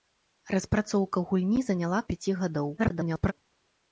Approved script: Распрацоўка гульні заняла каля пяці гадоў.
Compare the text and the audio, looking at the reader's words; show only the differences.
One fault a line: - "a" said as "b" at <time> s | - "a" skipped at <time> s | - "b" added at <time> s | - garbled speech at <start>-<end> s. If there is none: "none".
- "каля" skipped at 2.0 s
- garbled speech at 2.8-3.3 s